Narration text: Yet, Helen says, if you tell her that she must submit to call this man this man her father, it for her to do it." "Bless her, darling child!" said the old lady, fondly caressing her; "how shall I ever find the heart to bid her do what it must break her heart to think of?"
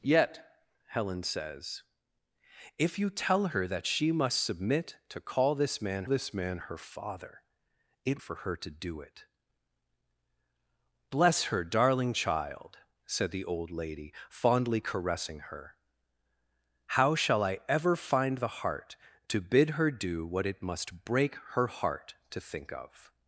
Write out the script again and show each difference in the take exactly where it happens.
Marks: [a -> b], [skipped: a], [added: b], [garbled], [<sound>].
Yet, Helen says, if you tell her that she must submit to call this man this man her father, it for her to do it." "Bless her, darling child!" said the old lady, fondly caressing her; "how shall I ever find the heart to bid her do what it must break her heart to think of?"